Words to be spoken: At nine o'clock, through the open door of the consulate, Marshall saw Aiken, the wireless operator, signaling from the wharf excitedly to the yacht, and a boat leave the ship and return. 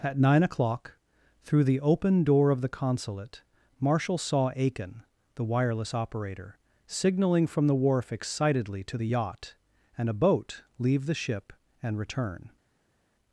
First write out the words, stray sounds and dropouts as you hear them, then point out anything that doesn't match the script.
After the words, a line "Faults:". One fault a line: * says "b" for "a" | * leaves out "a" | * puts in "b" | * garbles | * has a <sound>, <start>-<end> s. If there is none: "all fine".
At nine o'clock, through the open door of the consulate, Marshall saw Aiken, the wireless operator, signaling from the wharf excitedly to the yacht, and a boat leave the ship and return.
Faults:
all fine